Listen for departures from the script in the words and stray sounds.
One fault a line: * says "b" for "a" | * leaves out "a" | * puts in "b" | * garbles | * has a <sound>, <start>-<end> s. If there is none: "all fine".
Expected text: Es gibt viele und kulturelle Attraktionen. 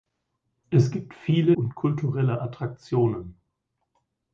all fine